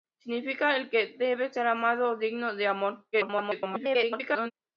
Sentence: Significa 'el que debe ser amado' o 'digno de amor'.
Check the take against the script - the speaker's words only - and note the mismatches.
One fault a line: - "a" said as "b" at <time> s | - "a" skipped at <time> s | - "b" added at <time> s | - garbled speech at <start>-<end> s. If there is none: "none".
- garbled speech at 3.1-4.5 s